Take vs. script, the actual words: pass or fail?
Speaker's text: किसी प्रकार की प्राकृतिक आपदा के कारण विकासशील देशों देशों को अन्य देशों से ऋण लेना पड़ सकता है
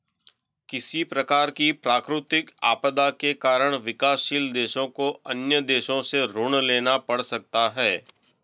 fail